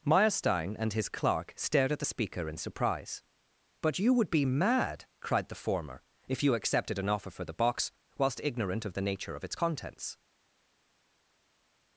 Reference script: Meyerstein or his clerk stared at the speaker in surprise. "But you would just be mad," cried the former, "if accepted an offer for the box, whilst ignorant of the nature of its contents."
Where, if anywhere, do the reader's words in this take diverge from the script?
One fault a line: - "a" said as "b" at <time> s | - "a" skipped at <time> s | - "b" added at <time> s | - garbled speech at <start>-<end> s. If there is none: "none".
- "or" said as "and" at 0.8 s
- "just" skipped at 4.3 s
- "you" added at 6.4 s